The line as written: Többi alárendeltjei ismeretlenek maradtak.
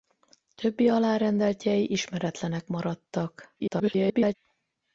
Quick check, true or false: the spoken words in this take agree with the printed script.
false